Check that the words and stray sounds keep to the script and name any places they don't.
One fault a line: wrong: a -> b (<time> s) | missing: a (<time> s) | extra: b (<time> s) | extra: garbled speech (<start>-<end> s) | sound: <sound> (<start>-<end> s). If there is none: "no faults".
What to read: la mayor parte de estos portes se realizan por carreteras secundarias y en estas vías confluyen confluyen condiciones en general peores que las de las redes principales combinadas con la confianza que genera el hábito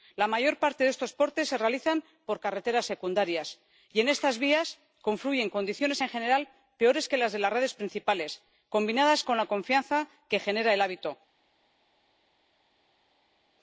missing: confluyen (5.5 s)